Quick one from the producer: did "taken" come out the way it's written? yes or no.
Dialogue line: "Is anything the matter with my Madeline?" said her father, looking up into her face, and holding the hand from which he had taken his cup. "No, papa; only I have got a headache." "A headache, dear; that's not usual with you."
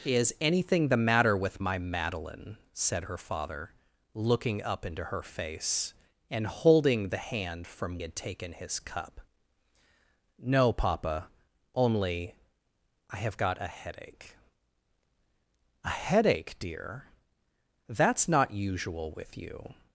yes